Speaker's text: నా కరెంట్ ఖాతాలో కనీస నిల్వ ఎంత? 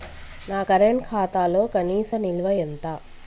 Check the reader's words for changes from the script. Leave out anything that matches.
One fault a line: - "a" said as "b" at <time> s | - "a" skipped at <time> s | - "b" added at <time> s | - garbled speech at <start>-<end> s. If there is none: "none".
none